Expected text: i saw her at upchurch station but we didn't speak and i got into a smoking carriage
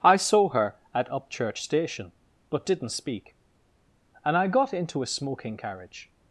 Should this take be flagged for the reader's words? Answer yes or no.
yes